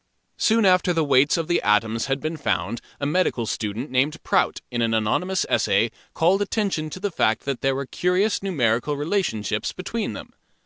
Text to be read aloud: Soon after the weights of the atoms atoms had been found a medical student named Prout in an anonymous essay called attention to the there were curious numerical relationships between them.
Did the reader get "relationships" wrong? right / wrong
right